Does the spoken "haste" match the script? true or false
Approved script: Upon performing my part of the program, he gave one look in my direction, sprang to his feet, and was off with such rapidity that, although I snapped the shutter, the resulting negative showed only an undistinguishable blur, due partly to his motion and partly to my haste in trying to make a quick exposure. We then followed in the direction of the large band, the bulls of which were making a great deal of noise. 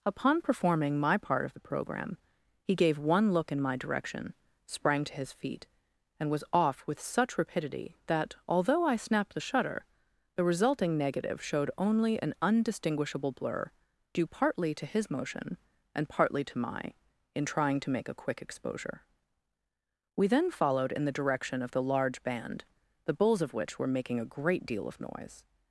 false